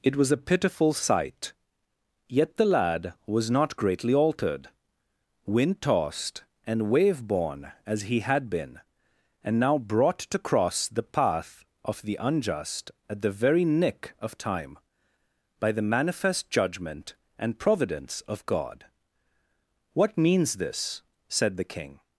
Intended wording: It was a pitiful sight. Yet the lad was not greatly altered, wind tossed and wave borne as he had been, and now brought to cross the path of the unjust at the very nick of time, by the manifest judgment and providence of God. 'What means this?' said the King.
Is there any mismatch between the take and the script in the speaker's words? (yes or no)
no